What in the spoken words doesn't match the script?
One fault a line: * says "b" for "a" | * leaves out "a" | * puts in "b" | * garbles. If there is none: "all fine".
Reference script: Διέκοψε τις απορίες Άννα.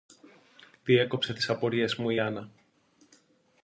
* puts in "μου η"